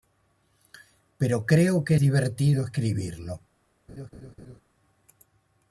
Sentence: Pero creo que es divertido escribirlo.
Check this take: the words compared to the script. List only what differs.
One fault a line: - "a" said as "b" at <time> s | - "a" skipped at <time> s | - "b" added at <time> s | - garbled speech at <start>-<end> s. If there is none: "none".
none